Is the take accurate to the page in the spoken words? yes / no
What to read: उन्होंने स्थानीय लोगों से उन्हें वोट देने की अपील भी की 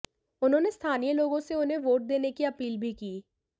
yes